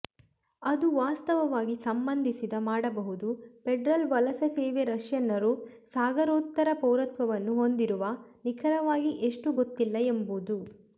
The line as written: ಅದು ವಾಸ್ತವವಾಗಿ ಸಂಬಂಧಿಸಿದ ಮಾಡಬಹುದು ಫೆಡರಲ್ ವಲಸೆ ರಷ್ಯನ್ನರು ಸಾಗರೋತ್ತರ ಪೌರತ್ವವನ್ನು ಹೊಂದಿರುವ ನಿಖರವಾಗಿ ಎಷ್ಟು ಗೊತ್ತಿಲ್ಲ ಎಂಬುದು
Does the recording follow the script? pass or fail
fail